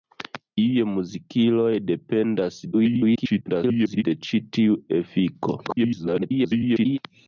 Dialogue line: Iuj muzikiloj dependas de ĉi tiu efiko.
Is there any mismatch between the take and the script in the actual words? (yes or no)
yes